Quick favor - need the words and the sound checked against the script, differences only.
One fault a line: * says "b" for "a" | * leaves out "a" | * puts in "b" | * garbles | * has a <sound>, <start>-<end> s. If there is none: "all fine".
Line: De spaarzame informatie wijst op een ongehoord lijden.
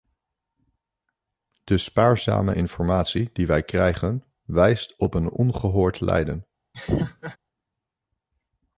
* puts in "die wij krijgen"
* has a laugh, 6.7-7.4 s